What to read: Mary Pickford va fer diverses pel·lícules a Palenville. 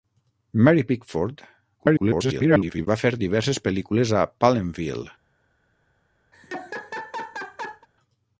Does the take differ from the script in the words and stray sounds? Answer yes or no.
yes